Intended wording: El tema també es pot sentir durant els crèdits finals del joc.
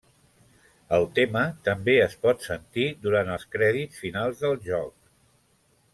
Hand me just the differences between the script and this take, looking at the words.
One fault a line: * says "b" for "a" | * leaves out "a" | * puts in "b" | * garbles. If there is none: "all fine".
all fine